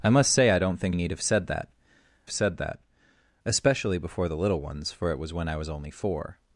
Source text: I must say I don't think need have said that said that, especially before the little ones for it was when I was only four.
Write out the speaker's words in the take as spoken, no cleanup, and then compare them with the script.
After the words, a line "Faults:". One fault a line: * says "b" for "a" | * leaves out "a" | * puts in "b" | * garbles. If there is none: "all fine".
I must say I don't think need have said that said that, especially before the little ones for it was when I was only four.
Faults:
all fine